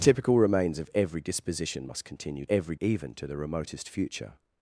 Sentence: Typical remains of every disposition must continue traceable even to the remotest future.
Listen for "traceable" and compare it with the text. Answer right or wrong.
wrong